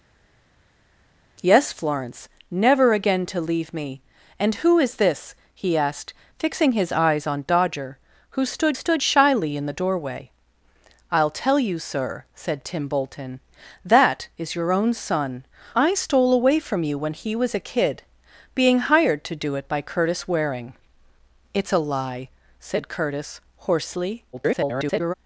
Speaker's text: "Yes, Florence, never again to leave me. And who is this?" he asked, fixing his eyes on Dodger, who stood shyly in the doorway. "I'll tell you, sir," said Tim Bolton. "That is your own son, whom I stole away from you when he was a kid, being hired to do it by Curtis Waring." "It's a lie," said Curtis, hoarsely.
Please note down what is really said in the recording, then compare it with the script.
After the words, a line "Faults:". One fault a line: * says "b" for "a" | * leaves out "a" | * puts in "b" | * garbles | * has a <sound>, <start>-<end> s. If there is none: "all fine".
"Yes, Florence, never again to leave me. And who is this?" he asked, fixing his eyes on Dodger, who stood stood shyly in the doorway. "I'll tell you, sir," said Tim Bolton. "That is your own son, I stole away from you when he was a kid, being hired to do it by Curtis Waring." "It's a lie," said Curtis, hoarsely. [garbled]
Faults:
* puts in "stood"
* leaves out "whom"
* garbles